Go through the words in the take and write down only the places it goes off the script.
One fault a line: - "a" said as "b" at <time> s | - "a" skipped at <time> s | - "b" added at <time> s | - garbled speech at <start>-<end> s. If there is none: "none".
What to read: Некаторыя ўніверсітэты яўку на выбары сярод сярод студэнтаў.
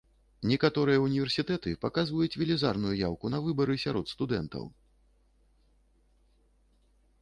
- "паказваюць велізарную" added at 1.9 s
- "сярод" skipped at 4.2 s